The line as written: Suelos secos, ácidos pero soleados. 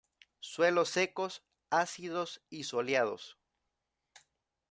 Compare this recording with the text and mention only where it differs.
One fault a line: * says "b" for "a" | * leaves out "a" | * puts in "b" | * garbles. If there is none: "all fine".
* says "y" for "pero"